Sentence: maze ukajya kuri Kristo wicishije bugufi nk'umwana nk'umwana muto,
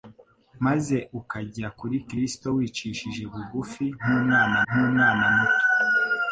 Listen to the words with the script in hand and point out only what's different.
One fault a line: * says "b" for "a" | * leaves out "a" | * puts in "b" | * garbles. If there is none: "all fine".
all fine